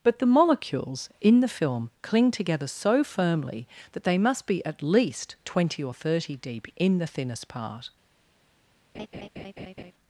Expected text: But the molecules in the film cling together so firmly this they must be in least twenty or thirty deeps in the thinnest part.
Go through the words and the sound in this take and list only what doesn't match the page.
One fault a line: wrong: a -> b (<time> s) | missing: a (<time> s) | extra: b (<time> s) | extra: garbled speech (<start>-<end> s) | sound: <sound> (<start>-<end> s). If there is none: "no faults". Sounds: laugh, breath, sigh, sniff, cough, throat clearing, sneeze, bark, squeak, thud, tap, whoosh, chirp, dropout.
wrong: this -> that (3.9 s)
wrong: in -> at (4.6 s)
wrong: deeps -> deep (6.4 s)
sound: laugh (8.9-9.9 s)